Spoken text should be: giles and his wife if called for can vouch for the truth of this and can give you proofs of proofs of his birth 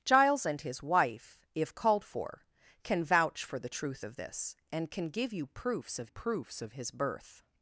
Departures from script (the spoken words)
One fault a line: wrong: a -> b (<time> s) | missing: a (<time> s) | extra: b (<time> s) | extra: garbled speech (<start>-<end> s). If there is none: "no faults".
no faults